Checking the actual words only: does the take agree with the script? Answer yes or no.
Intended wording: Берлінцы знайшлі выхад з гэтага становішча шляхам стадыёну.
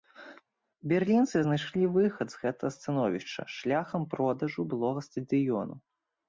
no